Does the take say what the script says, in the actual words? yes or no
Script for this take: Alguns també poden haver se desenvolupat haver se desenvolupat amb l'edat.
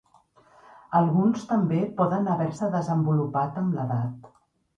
no